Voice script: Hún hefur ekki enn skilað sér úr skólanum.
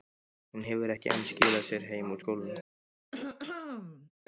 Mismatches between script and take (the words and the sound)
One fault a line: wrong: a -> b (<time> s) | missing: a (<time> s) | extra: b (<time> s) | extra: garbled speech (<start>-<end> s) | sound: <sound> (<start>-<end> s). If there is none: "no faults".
extra: heim (1.9 s)
sound: throat clearing (3.1-4.1 s)